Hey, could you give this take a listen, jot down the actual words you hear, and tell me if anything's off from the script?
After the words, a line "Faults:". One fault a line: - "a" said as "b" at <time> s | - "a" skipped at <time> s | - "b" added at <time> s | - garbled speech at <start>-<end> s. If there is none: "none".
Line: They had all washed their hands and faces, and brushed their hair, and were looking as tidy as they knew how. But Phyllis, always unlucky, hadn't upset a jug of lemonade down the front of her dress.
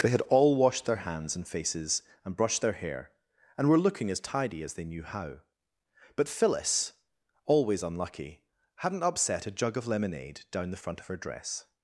They had all washed their hands and faces, and brushed their hair, and were looking as tidy as they knew how. But Phyllis, always unlucky, hadn't upset a jug of lemonade down the front of her dress.
Faults:
none